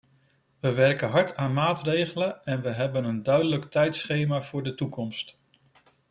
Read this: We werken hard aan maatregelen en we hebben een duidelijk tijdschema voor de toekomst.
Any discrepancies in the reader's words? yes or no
no